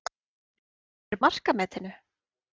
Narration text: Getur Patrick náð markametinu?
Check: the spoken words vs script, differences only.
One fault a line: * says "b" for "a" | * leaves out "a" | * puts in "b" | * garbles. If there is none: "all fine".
* leaves out "Patrick náð"